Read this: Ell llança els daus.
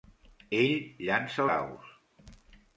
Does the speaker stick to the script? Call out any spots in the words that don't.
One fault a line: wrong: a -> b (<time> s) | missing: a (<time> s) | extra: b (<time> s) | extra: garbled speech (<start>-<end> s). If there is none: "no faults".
missing: els (1.5 s)